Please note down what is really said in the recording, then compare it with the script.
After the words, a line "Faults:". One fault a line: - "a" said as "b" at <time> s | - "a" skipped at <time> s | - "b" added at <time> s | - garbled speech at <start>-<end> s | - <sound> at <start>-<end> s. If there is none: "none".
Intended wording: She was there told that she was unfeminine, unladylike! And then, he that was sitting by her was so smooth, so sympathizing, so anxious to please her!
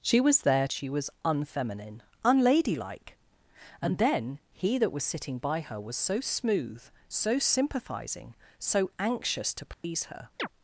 She was there she was unfeminine, unladylike! And then, he that was sitting by her was so smooth, so sympathizing, so anxious to please her!
Faults:
- "told that" skipped at 0.7 s
- dropout at 9.7-9.8 s
- chirp at 10.4-10.5 s